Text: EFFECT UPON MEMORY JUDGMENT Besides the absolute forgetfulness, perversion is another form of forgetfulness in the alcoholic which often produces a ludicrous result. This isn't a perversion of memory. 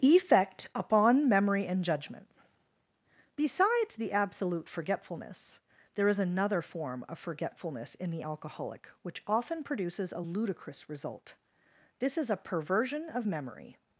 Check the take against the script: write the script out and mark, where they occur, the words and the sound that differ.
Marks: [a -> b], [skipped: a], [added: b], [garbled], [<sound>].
EFFECT UPON MEMORY [added: AND] JUDGMENT Besides the absolute forgetfulness, [perversion -> there] is another form of forgetfulness in the alcoholic which often produces a ludicrous result. This [isn't -> is] a perversion of memory.